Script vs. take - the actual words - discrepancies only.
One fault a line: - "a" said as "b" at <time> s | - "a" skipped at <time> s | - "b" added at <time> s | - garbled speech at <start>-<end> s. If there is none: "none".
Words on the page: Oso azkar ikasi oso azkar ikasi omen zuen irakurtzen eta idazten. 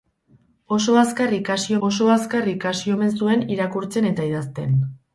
none